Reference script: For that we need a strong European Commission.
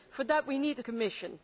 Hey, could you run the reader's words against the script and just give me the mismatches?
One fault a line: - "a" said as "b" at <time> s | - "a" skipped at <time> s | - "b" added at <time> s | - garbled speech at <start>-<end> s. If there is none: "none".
- "strong European" skipped at 0.8 s